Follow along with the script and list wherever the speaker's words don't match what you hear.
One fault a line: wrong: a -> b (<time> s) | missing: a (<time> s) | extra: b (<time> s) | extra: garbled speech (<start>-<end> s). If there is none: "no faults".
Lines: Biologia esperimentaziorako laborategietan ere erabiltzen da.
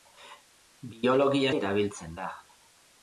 missing: esperimentaziorako laborategietan ere (1.5 s)